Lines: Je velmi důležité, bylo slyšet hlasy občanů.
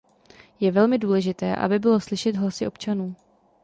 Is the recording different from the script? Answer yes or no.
yes